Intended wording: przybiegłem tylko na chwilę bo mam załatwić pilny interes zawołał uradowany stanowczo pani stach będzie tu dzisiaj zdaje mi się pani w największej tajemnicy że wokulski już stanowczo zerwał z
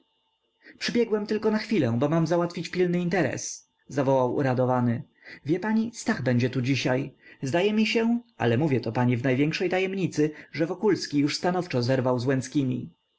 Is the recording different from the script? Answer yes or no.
yes